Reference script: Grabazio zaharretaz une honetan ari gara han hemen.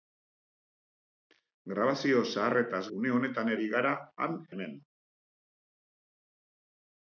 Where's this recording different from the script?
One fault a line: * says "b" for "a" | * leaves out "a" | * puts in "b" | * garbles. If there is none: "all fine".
all fine